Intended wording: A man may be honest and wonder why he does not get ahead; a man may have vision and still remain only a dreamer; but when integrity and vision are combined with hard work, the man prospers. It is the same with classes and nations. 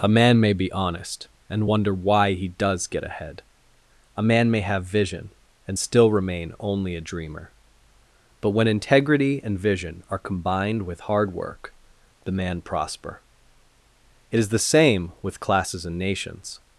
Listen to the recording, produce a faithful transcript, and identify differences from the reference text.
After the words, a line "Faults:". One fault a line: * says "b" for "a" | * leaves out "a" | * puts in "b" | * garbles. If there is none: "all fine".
A man may be honest and wonder why he does get ahead; a man may have vision and still remain only a dreamer; but when integrity and vision are combined with hard work, the man prosper. It is the same with classes and nations.
Faults:
* leaves out "not"
* says "prosper" for "prospers"